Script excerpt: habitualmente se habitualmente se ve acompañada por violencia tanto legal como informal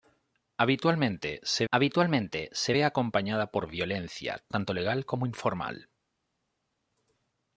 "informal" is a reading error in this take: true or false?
false